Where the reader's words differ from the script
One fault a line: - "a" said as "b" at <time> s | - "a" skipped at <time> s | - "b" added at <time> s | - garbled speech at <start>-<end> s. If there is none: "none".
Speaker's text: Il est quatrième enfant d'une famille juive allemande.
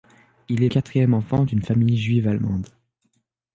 none